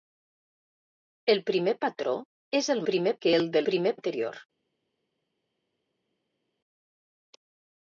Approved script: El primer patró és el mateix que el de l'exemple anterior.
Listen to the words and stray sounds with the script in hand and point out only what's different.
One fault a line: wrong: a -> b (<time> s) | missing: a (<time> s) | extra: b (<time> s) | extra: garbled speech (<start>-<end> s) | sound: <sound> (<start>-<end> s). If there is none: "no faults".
wrong: mateix -> primer (2.9 s)
wrong: l'exemple -> primer (3.7 s)